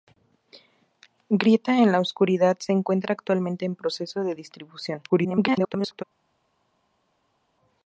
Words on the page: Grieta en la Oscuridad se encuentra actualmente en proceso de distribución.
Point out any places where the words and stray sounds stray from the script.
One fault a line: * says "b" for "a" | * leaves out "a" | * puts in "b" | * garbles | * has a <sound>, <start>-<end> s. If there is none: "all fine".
* garbles